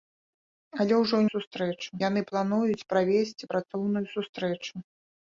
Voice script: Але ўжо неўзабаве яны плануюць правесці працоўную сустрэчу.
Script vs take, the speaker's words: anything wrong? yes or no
yes